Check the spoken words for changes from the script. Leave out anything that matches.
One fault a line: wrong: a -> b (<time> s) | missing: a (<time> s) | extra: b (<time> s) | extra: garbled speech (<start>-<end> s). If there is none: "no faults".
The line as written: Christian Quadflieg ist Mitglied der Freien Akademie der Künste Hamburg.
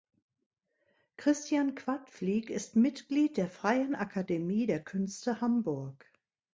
no faults